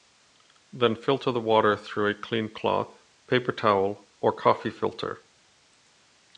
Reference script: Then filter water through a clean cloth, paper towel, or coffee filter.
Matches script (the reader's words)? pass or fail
fail